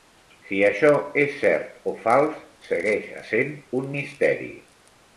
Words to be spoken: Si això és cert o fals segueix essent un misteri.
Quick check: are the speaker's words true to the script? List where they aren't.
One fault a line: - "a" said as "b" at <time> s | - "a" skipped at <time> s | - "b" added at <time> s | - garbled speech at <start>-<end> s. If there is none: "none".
none